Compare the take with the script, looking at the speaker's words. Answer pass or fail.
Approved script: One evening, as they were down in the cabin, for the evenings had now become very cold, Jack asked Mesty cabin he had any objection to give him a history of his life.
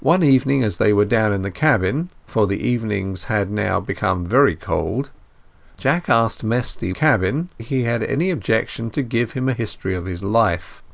pass